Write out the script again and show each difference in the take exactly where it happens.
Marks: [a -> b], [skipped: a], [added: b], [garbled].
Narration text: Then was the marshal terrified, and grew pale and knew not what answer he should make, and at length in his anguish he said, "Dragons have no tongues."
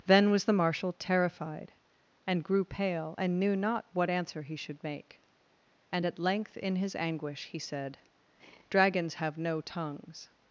Then was the marshal terrified, and grew pale and knew not what answer he should make, and at length in his anguish he said, "Dragons have no tongues."